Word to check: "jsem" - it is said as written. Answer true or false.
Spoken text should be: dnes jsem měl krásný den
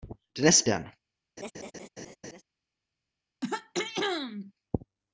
false